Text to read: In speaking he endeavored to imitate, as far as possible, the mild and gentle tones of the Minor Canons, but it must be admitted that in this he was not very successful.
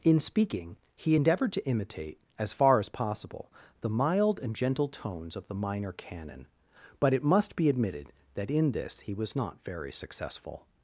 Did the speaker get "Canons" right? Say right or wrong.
wrong